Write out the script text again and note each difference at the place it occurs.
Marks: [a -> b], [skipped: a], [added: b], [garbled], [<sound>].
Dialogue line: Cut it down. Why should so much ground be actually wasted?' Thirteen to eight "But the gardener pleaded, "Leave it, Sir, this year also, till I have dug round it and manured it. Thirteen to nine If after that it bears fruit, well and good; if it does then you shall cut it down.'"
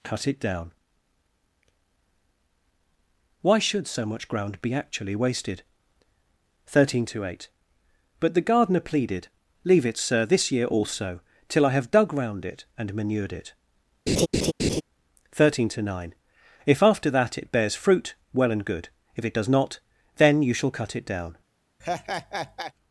Cut it down. Why should so much ground be actually wasted?' Thirteen to eight "But the gardener pleaded, "Leave it, Sir, this year also, till I have dug round it and manured it. [laugh] Thirteen to nine If after that it bears fruit, well and good; if it does [added: not] then you shall cut it down.'" [laugh]